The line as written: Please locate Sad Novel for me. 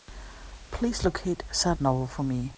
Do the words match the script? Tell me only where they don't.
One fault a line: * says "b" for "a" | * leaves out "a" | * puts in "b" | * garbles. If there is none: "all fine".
all fine